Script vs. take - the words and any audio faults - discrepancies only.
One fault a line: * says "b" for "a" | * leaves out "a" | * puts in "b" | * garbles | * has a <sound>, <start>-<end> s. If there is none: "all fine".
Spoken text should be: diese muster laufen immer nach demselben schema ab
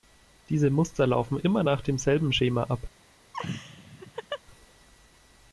* has a laugh, 3.3-4.4 s